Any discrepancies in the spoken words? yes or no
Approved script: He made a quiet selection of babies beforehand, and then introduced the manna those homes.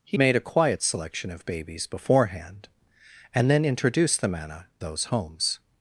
no